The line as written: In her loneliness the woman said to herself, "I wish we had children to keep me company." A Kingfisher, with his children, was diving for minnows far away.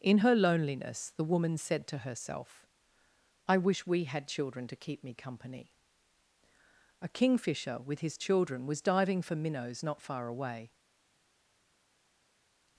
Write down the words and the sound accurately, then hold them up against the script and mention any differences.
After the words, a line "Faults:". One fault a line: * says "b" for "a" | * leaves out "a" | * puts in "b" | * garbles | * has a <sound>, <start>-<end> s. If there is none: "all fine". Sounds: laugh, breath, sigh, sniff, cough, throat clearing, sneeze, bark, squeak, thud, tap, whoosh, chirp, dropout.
In her loneliness the woman said to herself, "I wish we had children to keep me company." A Kingfisher, with his children, was diving for minnows not far away.
Faults:
* puts in "not"